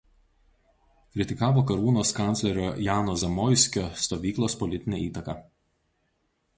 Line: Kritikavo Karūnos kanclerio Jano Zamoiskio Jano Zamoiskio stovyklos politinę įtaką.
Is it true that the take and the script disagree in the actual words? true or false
true